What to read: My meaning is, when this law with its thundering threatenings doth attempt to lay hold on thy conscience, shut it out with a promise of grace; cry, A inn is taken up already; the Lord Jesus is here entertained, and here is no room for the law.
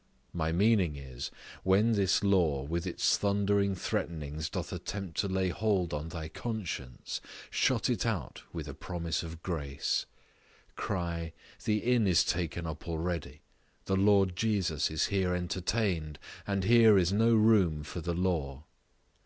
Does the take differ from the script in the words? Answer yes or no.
yes